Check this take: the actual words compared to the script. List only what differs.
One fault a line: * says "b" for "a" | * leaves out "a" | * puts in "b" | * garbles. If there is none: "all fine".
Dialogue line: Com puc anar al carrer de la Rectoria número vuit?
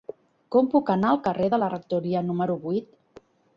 all fine